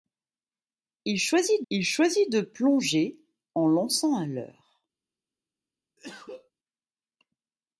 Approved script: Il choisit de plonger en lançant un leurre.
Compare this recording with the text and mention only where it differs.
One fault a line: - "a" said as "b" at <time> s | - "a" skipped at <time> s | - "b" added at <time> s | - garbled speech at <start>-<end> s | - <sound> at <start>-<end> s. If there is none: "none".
- "il choisit" added at 1.7 s
- cough at 6.0-6.5 s